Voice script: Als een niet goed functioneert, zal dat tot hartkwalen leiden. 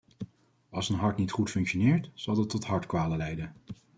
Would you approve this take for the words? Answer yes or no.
no